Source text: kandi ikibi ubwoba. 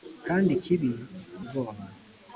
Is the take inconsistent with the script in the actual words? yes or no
no